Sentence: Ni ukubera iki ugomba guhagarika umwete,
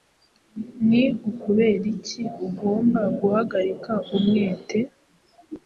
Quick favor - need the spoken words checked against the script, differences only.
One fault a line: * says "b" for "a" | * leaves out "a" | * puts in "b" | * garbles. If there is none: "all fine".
all fine